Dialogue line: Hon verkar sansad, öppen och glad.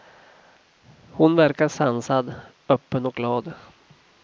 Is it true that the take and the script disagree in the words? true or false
false